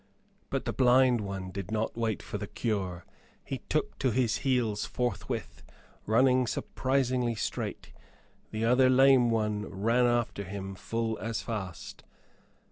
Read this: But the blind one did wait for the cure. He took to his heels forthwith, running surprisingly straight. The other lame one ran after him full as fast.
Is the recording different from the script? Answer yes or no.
yes